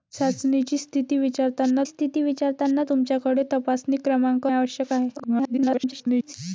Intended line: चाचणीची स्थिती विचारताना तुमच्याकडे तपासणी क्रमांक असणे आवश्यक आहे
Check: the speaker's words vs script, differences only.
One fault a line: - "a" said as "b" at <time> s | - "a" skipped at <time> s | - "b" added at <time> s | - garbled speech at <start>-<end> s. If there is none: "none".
- "स्थिती विचारताना" added at 1.8 s
- "असणे" skipped at 4.5 s
- garbled speech at 5.2-6.3 s